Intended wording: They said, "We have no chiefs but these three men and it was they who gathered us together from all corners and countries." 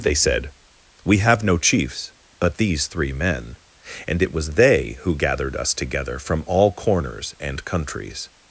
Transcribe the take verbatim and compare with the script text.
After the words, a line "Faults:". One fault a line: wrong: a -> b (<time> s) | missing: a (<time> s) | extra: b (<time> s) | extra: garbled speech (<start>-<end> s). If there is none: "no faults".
They said, "We have no chiefs but these three men and it was they who gathered us together from all corners and countries."
Faults:
no faults